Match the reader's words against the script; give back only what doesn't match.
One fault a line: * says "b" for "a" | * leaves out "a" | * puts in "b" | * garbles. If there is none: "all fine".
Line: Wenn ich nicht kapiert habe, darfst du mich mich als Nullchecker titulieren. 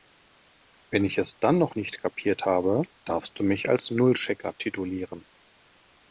* puts in "es dann noch"
* leaves out "mich"